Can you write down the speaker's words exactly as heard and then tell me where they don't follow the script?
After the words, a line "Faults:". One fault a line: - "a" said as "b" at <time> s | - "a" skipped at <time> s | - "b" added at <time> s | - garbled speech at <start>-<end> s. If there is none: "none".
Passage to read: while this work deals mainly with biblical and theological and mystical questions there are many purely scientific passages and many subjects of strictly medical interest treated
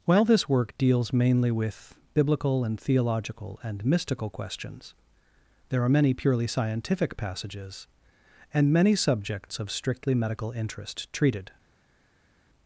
while this work deals mainly with biblical and theological and mystical questions there are many purely scientific passages and many subjects of strictly medical interest treated
Faults:
none